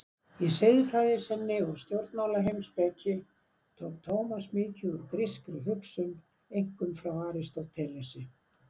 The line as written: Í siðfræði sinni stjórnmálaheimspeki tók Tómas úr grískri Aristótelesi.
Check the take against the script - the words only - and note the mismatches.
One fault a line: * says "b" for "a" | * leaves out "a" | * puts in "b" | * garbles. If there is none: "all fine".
* puts in "og"
* puts in "mikið"
* puts in "hugsun einkum frá"